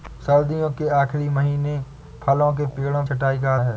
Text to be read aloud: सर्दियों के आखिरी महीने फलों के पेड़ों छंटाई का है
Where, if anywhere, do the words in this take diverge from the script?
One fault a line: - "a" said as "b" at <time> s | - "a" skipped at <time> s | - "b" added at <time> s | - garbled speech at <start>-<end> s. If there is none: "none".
none